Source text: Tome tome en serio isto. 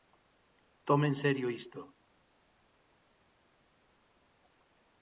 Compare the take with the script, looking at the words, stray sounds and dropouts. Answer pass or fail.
fail